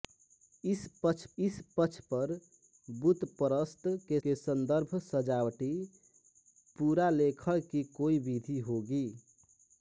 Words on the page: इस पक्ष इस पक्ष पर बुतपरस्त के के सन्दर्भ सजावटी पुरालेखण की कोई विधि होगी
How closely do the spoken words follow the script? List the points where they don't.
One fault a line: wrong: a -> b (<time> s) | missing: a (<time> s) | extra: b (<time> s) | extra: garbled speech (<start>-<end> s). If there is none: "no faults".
no faults